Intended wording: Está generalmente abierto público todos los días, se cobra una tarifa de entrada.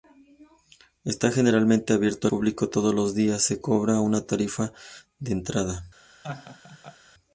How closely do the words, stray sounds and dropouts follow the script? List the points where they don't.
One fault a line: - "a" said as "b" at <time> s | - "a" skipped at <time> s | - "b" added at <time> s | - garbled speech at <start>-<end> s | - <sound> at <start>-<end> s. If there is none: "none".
- laugh at 6.2-7.0 s